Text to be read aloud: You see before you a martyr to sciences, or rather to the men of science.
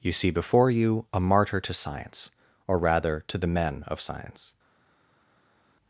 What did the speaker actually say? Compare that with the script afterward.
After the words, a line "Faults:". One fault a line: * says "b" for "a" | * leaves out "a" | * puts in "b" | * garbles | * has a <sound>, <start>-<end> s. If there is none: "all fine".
You see before you a martyr to science, or rather to the men of science.
Faults:
* says "science" for "sciences"